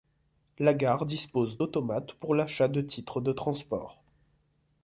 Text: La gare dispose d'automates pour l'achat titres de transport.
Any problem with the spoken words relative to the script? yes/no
yes